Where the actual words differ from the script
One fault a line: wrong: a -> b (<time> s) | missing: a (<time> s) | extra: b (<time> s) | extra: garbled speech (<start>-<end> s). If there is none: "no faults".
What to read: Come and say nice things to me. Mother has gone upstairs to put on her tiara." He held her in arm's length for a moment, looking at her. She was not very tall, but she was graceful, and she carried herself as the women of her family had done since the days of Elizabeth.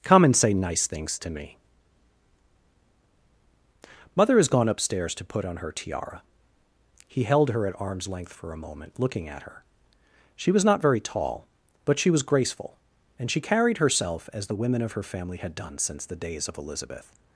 wrong: in -> at (7.7 s)